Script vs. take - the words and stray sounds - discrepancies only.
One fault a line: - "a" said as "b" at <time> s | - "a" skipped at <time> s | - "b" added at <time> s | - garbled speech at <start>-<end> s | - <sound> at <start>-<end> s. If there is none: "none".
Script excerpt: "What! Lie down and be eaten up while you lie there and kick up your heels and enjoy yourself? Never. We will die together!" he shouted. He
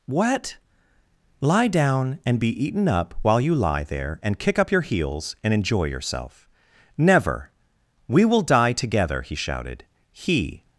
none